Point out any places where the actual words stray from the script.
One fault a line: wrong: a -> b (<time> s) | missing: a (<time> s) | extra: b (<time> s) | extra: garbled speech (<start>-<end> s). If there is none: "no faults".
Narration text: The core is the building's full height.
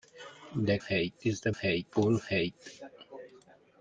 wrong: core -> height (0.8 s)
wrong: building's -> height (1.5 s)